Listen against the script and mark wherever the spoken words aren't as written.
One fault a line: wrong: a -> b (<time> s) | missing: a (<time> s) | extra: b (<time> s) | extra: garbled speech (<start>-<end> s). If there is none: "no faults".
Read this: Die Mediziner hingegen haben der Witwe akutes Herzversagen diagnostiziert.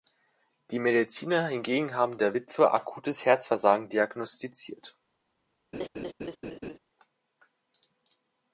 no faults